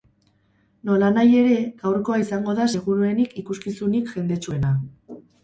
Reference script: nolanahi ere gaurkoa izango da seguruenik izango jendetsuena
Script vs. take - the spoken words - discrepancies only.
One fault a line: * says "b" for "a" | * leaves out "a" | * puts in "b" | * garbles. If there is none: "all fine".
* says "ikuskizunik" for "izango"